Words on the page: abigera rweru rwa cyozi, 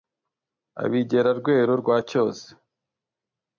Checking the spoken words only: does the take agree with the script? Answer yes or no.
yes